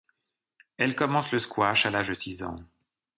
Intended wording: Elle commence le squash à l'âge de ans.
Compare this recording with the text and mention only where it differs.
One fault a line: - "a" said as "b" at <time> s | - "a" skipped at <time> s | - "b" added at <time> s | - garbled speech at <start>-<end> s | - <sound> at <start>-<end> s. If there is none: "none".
- "six" added at 2.1 s